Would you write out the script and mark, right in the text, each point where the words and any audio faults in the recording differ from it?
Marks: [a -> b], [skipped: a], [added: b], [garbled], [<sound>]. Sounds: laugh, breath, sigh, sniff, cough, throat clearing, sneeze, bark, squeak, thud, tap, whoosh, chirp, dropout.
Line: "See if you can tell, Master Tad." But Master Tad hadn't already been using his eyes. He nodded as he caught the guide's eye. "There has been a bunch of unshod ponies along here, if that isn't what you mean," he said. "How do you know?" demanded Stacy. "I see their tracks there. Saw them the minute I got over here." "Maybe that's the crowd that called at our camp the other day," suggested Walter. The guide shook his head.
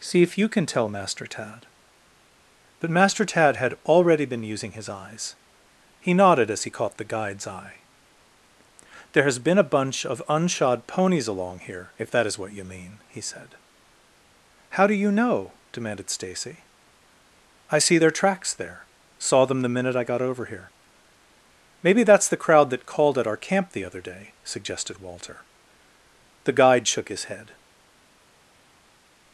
"See if you can tell, Master Tad." But Master Tad [hadn't -> had] already been using his eyes. He nodded as he caught the guide's eye. "There has been a bunch of unshod ponies along here, if that [isn't -> is] what you mean," he said. "How do you know?" demanded Stacy. "I see their tracks there. Saw them the minute I got over here." "Maybe that's the crowd that called at our camp the other day," suggested Walter. The guide shook his head.